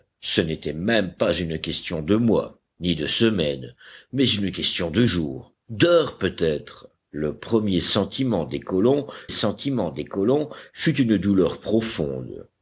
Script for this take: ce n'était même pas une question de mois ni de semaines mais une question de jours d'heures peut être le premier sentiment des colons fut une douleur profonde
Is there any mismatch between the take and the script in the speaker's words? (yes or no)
yes